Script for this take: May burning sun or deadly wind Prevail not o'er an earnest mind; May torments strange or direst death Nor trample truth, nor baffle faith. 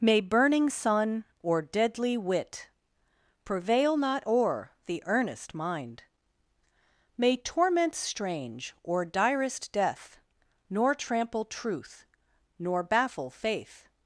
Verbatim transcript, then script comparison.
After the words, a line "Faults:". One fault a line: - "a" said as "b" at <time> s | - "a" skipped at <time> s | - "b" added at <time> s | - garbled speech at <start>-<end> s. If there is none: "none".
May burning sun or deadly wit Prevail not o'er the earnest mind; May torments strange or direst death Nor trample truth, nor baffle faith.
Faults:
- "wind" said as "wit" at 2.2 s
- "an" said as "the" at 4.8 s